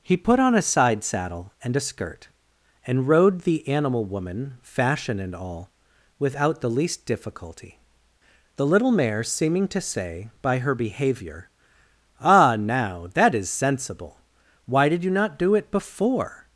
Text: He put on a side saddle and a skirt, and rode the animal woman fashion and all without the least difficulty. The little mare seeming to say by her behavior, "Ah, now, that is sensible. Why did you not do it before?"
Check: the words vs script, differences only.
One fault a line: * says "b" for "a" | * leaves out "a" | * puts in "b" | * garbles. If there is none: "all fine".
all fine